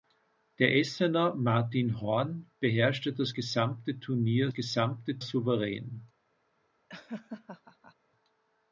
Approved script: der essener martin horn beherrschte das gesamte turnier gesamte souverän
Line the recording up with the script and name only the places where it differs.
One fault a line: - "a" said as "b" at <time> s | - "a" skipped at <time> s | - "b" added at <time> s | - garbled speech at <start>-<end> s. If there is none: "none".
none